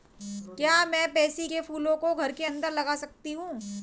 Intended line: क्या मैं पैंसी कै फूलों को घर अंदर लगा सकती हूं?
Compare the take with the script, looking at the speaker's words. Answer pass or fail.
fail